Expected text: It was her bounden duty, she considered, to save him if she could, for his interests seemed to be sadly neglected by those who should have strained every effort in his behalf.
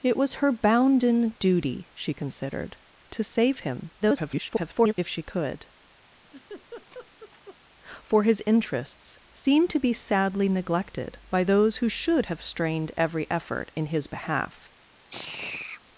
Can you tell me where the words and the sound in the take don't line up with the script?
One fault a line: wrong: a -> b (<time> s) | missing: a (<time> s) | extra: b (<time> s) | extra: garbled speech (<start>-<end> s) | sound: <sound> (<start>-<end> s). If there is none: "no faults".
extra: garbled speech (4.0-4.9 s)
sound: laugh (6.1-7.6 s)
sound: sigh (15.0-15.8 s)